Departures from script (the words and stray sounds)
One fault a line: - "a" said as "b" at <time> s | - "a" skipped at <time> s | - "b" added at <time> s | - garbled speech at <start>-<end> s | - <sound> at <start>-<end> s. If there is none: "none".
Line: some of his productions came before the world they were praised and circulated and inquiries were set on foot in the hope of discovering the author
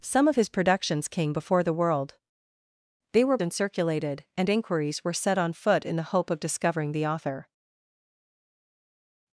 - "praised" skipped at 3.4 s